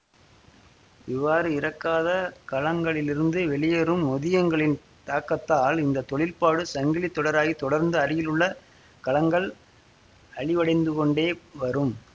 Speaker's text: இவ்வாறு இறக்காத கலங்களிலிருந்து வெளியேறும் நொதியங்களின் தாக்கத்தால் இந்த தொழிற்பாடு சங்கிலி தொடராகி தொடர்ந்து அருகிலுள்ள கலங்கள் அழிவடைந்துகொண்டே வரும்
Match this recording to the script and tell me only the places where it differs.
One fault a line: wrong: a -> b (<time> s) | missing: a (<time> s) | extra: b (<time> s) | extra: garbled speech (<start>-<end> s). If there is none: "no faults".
no faults